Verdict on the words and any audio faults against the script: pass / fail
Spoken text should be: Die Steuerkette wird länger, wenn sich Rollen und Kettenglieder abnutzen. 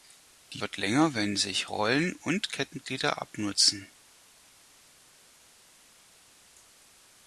fail